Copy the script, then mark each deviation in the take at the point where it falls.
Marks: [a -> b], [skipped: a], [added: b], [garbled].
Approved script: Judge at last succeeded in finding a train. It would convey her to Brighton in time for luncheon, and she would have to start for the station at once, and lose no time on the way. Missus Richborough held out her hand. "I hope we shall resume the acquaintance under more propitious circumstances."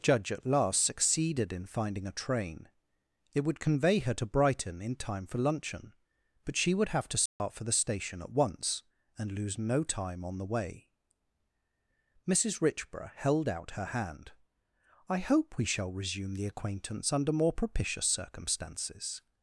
Judge at last succeeded in finding a train. It would convey her to Brighton in time for luncheon, [and -> but] she would have to start for the station at once, and lose no time on the way. Missus Richborough held out her hand. "I hope we shall resume the acquaintance under more propitious circumstances."